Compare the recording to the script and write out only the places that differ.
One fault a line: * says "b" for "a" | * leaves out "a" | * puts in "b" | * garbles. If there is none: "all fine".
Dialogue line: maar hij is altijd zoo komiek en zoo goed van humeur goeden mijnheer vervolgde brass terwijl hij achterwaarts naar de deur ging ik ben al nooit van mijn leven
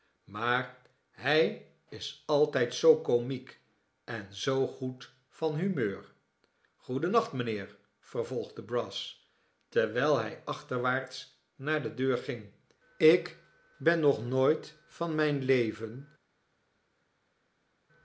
* puts in "nacht"
* says "nog" for "al"